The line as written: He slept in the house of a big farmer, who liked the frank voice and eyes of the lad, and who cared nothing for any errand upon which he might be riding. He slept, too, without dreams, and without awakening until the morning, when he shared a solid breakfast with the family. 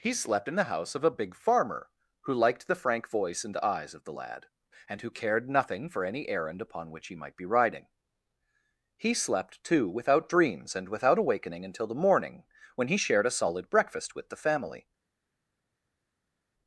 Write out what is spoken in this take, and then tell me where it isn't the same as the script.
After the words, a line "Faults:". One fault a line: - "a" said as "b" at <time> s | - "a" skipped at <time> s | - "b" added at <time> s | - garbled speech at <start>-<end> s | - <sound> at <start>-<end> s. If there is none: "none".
He slept in the house of a big farmer, who liked the frank voice and eyes of the lad, and who cared nothing for any errand upon which he might be riding. He slept, too, without dreams, and without awakening until the morning, when he shared a solid breakfast with the family.
Faults:
none